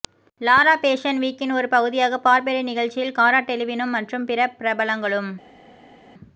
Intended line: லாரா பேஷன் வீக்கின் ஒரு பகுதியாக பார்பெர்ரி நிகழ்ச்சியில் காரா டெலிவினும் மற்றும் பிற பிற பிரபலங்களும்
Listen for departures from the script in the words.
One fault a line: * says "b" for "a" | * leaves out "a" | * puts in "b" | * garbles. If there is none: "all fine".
* leaves out "பிற"